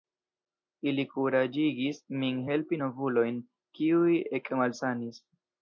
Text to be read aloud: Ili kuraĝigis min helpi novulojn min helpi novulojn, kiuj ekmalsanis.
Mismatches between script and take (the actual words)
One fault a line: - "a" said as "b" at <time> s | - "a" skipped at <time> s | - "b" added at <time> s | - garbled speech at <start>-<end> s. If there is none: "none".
- "min helpi novulojn" skipped at 3.4 s